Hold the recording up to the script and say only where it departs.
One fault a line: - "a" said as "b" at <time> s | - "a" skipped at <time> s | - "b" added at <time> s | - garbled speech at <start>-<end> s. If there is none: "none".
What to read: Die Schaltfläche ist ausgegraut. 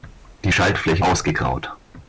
- "ist" skipped at 1.0 s